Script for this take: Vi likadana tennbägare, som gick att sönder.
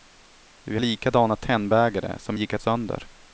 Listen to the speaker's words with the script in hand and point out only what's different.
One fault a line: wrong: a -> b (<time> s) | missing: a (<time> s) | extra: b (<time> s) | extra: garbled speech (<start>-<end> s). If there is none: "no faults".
no faults